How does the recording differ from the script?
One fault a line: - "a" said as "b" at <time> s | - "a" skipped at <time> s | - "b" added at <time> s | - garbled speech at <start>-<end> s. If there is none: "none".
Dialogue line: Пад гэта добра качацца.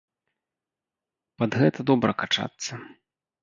none